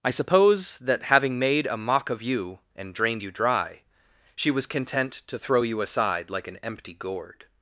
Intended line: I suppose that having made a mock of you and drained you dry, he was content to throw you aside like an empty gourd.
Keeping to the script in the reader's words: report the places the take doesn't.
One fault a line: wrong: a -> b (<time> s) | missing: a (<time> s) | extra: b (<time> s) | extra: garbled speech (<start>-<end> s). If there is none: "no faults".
wrong: he -> she (4.3 s)